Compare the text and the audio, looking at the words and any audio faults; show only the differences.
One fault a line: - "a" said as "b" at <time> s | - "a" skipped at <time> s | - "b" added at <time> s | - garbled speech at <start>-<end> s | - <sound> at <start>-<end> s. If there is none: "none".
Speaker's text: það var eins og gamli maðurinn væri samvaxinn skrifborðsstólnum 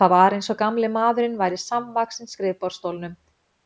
none